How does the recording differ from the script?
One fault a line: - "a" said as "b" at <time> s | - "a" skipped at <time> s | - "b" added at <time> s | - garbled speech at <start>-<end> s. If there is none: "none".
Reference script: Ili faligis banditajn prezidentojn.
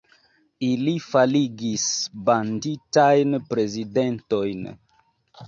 none